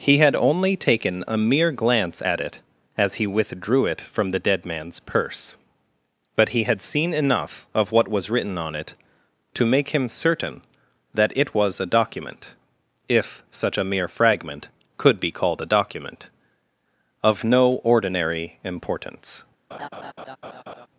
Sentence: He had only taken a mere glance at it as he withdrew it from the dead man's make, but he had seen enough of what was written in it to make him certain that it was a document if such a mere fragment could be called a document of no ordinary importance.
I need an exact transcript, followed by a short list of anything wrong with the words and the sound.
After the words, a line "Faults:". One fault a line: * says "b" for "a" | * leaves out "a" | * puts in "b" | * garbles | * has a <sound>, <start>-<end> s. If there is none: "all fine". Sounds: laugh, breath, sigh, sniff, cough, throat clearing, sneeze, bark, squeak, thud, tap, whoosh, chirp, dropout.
He had only taken a mere glance at it as he withdrew it from the dead man's purse, but he had seen enough of what was written on it to make him certain that it was a document if such a mere fragment could be called a document of no ordinary importance.
Faults:
* says "purse" for "make"
* says "on" for "in"
* has a laugh, 19.7-20.9 s